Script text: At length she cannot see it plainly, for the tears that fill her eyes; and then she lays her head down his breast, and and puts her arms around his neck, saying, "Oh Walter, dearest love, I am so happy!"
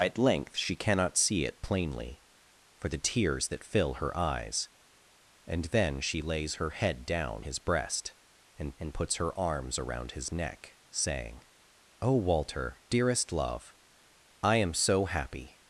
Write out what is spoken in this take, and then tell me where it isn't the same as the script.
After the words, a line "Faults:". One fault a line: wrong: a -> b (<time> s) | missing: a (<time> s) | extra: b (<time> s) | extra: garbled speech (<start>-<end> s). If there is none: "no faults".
At length she cannot see it plainly, for the tears that fill her eyes; and then she lays her head down his breast, and and puts her arms around his neck, saying, "Oh Walter, dearest love, I am so happy!"
Faults:
no faults